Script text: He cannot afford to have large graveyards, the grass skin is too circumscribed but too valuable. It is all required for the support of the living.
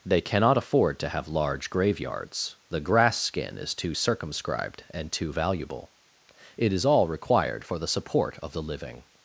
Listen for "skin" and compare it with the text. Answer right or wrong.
right